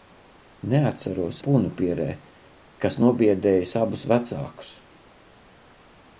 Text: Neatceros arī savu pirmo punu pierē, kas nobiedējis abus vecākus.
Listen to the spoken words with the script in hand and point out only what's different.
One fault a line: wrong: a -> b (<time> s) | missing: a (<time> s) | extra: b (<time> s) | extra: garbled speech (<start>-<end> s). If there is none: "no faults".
missing: arī savu pirmo (1.4 s)